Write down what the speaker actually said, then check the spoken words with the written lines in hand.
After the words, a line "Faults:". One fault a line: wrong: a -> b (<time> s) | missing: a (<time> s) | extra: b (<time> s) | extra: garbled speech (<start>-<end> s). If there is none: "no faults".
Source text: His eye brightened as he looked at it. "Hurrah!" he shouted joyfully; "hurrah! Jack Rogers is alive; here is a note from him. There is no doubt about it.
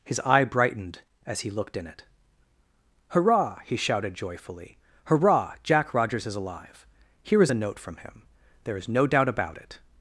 His eye brightened as he looked in it. "Hurrah!" he shouted joyfully; "hurrah! Jack Rogers is alive; here is a note from him. There is no doubt about it.
Faults:
wrong: at -> in (1.8 s)